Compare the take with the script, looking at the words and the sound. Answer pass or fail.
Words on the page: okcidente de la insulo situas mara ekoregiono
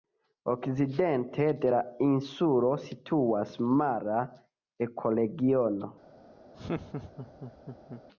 fail